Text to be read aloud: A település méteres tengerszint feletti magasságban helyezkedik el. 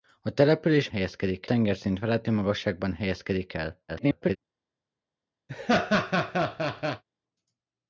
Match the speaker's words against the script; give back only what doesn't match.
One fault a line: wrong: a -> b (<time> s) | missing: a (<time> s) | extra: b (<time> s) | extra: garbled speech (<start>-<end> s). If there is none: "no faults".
wrong: méteres -> helyezkedik (0.9 s)
extra: garbled speech (3.9-4.4 s)